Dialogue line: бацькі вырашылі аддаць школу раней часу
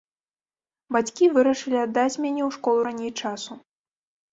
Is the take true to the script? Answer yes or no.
no